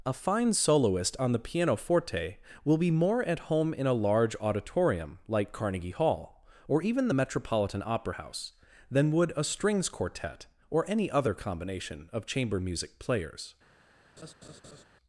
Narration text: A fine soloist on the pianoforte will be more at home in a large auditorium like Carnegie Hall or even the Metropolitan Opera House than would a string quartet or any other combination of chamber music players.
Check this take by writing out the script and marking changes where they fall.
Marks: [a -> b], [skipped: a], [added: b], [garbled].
A fine soloist on the pianoforte will be more at home in a large auditorium like Carnegie Hall or even the Metropolitan Opera House than would a [string -> strings] quartet or any other combination of chamber music players.